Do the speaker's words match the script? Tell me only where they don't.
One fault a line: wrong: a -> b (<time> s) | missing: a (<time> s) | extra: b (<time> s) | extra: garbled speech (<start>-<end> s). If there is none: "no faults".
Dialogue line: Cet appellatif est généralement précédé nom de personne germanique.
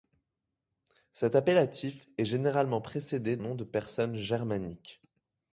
no faults